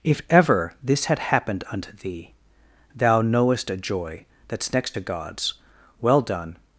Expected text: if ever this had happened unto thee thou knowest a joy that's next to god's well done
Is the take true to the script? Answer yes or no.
yes